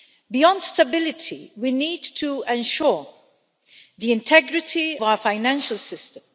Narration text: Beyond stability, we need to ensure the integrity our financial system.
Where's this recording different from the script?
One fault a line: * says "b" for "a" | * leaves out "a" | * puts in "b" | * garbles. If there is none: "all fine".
all fine